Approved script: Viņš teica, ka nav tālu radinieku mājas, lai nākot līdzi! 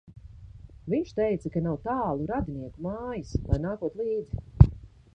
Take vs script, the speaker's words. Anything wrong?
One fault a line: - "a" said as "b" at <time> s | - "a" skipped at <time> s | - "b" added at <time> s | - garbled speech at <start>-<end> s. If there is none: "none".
none